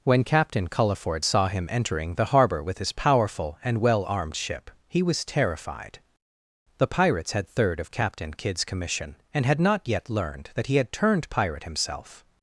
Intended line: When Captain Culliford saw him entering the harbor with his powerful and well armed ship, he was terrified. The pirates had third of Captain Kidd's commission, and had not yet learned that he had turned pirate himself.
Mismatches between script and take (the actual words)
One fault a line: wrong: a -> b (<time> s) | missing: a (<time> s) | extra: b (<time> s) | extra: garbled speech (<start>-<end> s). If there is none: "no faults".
no faults